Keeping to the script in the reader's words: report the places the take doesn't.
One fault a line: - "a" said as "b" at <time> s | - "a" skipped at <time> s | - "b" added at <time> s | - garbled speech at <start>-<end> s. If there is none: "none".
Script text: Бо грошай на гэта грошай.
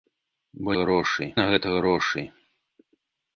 none